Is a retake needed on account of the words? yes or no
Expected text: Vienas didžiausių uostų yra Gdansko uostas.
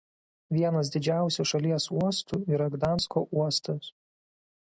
yes